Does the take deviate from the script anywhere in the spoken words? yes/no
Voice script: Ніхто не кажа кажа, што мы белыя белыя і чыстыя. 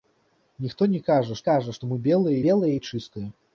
no